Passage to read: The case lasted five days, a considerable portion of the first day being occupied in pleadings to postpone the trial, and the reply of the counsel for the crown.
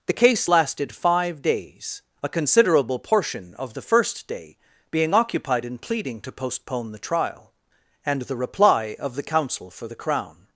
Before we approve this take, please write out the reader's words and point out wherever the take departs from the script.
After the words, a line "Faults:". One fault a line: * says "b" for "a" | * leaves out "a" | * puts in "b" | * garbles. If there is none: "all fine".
The case lasted five days, a considerable portion of the first day being occupied in pleading to postpone the trial, and the reply of the counsel for the crown.
Faults:
* says "pleading" for "pleadings"